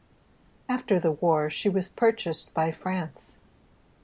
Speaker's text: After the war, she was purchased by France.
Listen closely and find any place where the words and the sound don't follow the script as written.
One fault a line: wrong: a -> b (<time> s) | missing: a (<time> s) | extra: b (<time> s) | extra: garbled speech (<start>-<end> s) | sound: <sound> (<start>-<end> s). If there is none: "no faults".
no faults